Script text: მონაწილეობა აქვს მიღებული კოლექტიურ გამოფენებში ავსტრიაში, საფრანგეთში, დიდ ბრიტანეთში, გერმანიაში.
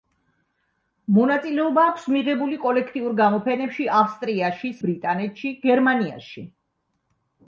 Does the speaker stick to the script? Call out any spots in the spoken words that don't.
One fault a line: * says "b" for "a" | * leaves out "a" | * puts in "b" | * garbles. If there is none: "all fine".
* leaves out "საფრანგეთში დიდ"